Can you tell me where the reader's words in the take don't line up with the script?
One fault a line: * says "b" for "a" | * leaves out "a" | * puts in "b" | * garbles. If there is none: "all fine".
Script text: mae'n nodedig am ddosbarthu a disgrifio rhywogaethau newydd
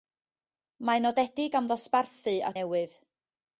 * leaves out "disgrifio rhywogaethau"